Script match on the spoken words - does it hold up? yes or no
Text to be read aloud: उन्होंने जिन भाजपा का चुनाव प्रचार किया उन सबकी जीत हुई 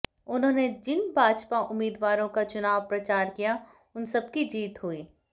no